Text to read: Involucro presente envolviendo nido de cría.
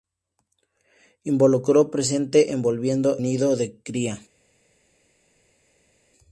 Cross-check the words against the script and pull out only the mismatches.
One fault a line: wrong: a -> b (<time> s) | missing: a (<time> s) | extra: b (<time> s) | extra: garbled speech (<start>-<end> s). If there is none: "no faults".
no faults